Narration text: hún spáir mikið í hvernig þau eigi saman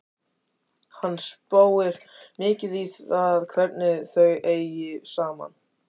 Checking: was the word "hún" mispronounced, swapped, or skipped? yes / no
yes